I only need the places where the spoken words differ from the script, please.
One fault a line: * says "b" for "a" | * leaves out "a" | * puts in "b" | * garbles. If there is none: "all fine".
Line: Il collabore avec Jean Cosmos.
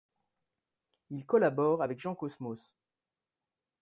all fine